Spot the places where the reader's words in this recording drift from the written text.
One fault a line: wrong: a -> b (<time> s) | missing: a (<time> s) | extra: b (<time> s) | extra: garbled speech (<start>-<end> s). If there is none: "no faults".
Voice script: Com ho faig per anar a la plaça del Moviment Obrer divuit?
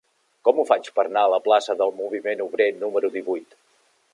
extra: número (2.8 s)